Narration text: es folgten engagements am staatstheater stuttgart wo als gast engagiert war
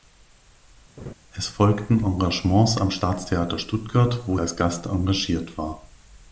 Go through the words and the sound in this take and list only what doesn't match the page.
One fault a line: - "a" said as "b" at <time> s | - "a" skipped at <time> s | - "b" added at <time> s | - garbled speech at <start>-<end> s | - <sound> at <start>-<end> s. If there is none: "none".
- laugh at 1.0-1.1 s